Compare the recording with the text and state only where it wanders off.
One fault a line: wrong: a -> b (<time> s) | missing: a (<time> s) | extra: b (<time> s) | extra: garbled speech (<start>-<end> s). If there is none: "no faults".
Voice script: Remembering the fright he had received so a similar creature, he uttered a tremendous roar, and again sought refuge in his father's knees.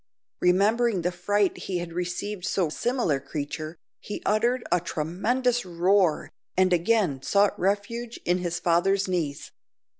no faults